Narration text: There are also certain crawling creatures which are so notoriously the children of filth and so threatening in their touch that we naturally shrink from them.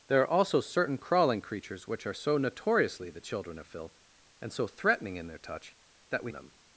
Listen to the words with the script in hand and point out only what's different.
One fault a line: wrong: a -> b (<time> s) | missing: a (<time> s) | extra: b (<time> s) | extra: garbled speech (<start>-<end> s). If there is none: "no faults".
missing: naturally shrink from (6.3 s)